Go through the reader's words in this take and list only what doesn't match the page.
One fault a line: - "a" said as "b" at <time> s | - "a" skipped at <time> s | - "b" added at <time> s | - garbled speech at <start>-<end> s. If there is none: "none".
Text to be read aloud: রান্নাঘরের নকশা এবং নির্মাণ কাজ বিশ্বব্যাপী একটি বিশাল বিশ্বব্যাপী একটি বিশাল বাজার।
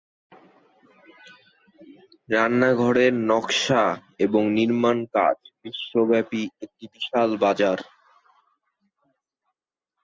- "বিশ্বব্যাপী একটি বিশাল" skipped at 7.3 s